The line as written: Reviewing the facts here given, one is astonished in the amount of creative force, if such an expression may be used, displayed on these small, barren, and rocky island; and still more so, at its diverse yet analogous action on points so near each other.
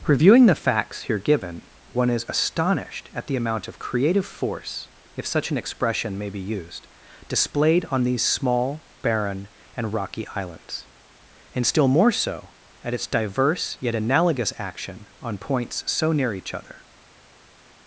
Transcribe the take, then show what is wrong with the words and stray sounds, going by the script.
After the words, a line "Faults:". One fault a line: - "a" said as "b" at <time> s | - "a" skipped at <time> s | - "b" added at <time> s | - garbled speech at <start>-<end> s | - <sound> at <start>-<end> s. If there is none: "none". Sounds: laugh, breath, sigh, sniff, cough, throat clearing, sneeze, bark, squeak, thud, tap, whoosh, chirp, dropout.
Reviewing the facts here given, one is astonished at the amount of creative force, if such an expression may be used, displayed on these small, barren, and rocky islands; and still more so, at its diverse yet analogous action on points so near each other.
Faults:
- "in" said as "at" at 3.1 s
- "island" said as "islands" at 10.3 s